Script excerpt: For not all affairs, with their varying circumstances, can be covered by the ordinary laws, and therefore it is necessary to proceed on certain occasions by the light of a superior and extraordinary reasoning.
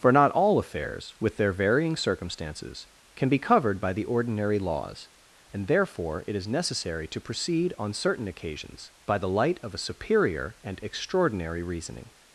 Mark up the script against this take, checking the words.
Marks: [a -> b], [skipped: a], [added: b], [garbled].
For not all affairs, with their varying circumstances, can be covered by the ordinary laws, and therefore it is necessary to proceed on certain occasions by the light of a superior and extraordinary reasoning.